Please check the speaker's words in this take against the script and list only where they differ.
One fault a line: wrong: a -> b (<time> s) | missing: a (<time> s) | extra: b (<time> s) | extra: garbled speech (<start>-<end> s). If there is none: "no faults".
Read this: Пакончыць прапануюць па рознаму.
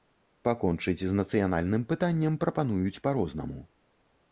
extra: з нацыянальным пытаннем (1.0 s)